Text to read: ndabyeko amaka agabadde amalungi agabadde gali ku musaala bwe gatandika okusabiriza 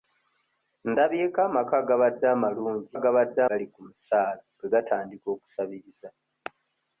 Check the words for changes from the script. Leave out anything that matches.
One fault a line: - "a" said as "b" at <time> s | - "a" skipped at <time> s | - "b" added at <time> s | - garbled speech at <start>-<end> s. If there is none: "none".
none